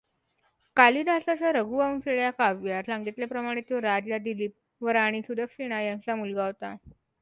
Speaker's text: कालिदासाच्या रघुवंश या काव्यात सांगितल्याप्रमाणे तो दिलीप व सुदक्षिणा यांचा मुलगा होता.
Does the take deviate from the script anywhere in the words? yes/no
yes